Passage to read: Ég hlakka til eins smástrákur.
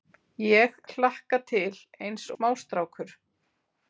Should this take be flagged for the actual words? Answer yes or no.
no